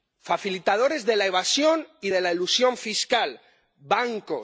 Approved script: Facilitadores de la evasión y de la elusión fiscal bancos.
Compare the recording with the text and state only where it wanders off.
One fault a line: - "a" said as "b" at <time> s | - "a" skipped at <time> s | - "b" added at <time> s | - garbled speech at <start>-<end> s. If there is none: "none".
none